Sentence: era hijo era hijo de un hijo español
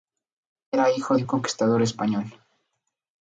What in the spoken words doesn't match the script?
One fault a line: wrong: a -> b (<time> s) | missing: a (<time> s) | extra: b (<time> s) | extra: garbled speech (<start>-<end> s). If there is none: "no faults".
missing: era hijo (1.2 s)
wrong: hijo -> conquistador (1.3 s)